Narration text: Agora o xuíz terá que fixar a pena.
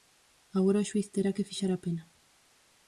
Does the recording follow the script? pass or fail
pass